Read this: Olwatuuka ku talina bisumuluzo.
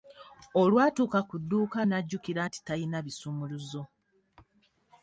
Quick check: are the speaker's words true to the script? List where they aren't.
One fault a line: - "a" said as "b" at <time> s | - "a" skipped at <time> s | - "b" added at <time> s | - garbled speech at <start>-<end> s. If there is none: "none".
- "dduuka n'ajjukira nti" added at 1.4 s